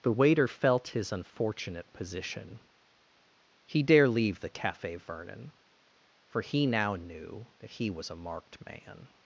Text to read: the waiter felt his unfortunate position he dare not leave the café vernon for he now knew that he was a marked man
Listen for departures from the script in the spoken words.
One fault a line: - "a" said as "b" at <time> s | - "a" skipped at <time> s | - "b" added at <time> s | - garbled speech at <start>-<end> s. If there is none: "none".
- "not" skipped at 4.1 s